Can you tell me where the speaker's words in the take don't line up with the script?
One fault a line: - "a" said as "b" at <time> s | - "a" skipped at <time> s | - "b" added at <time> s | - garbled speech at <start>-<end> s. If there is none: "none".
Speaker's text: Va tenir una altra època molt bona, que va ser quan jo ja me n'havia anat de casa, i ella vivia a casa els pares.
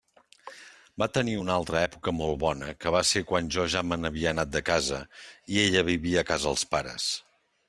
none